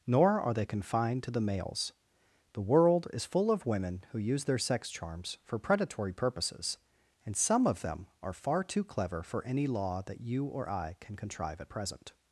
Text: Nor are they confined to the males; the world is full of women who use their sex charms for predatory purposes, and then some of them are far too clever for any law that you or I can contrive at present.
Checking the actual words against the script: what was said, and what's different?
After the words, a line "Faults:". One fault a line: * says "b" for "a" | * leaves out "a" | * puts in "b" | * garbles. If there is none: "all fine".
Nor are they confined to the males; the world is full of women who use their sex charms for predatory purposes, and some of them are far too clever for any law that you or I can contrive at present.
Faults:
* leaves out "then"